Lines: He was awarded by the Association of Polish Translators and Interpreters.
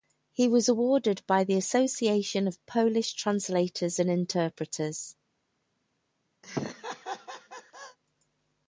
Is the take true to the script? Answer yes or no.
yes